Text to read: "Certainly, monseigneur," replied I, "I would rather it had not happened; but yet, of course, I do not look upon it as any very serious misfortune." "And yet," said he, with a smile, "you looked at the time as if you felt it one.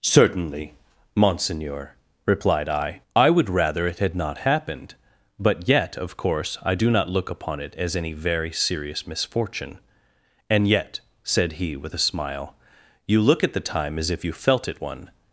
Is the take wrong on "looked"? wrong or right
wrong